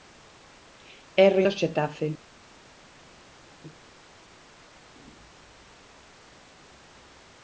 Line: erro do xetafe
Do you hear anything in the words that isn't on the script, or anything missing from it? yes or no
no